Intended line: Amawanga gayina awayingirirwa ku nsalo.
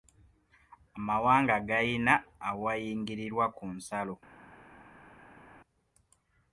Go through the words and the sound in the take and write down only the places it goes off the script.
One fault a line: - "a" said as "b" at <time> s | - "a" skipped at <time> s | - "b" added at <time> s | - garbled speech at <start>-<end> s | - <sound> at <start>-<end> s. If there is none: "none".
none